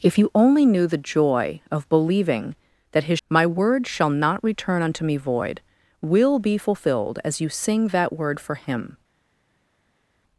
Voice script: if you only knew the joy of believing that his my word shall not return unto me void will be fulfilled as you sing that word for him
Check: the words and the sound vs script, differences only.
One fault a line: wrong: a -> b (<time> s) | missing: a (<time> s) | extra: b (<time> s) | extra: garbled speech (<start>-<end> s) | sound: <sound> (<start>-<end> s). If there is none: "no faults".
no faults